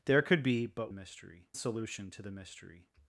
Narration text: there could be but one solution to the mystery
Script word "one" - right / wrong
wrong